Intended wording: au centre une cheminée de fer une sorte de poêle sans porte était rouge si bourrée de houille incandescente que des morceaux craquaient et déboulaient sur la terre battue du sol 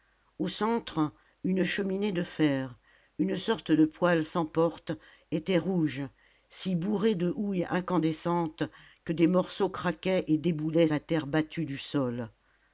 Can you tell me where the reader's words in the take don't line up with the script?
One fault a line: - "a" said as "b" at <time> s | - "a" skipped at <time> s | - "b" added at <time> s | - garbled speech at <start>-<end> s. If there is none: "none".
- "sur" skipped at 10.9 s